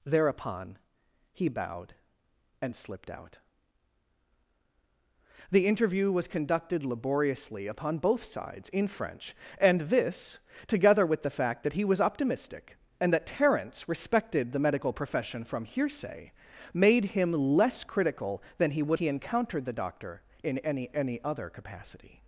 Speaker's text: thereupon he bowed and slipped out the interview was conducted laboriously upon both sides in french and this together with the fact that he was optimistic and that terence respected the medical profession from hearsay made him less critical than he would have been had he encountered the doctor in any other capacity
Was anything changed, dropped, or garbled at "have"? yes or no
yes